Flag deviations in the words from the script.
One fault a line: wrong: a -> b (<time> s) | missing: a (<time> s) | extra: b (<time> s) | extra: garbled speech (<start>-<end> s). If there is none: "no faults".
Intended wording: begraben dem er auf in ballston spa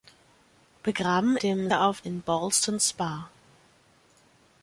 no faults